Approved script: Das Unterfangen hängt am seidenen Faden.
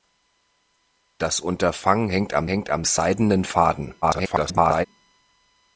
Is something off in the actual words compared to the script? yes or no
yes